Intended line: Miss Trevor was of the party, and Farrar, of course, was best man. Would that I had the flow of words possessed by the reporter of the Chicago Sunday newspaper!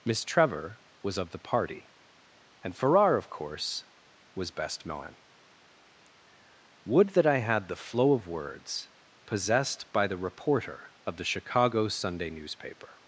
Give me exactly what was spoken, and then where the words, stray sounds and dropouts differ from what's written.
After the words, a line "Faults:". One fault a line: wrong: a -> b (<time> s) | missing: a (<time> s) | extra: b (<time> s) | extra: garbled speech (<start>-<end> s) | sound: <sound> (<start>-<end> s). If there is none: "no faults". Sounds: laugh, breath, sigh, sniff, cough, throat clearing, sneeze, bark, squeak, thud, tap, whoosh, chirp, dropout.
Miss Trevor was of the party, and Farrar, of course, was best man. Would that I had the flow of words possessed by the reporter of the Chicago Sunday newspaper!
Faults:
no faults